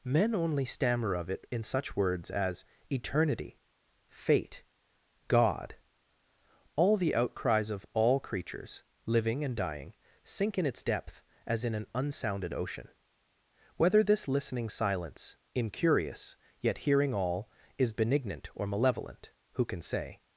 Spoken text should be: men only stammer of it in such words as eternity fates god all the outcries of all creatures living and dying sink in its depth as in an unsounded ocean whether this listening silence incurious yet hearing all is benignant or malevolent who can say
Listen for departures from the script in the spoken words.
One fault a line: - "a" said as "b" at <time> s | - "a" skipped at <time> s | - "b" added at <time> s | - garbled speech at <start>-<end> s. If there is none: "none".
- "fates" said as "fate" at 4.1 s